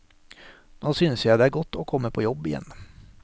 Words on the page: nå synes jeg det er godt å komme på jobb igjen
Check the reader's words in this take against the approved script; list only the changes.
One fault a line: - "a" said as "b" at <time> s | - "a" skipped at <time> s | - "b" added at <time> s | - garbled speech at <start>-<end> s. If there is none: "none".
none